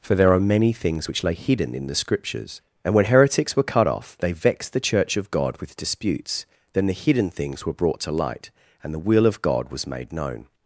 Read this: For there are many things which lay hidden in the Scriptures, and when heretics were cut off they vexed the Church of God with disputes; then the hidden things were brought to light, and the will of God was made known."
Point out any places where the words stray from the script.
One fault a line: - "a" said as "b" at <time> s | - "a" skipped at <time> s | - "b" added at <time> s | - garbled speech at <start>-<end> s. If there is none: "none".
none